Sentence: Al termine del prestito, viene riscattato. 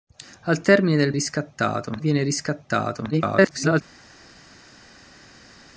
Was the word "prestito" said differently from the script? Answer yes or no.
yes